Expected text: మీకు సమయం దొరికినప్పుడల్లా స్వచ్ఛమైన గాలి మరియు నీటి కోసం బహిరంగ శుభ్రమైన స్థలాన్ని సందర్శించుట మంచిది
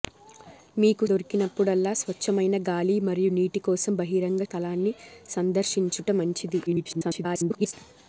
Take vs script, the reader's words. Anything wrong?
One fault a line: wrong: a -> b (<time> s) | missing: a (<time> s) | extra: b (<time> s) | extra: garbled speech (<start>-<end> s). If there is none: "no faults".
missing: సమయం (1.1 s)
missing: శుభ్రమైన (4.4 s)
extra: garbled speech (6.7-7.7 s)